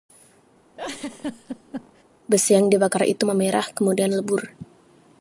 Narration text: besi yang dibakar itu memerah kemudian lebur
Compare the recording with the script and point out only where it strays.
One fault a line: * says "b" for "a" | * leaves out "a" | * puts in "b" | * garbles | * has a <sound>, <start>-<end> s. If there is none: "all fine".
* has a laugh, 0.8-2.0 s